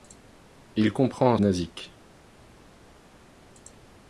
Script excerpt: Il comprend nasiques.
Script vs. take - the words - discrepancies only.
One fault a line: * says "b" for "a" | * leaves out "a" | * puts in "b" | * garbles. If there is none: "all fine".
all fine